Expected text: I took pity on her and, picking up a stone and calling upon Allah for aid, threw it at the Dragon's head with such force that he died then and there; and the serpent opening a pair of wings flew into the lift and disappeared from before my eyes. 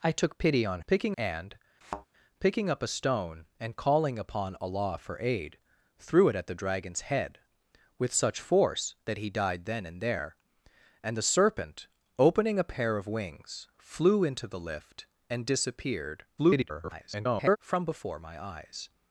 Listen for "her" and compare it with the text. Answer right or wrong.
wrong